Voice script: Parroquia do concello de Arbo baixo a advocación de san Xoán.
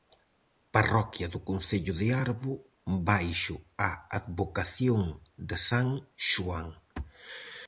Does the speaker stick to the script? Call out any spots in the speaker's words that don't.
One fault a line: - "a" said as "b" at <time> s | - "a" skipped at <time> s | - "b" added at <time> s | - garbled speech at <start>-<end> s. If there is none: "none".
none